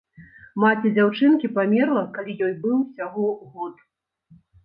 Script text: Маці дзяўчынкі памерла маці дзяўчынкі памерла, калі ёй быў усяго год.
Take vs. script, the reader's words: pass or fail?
fail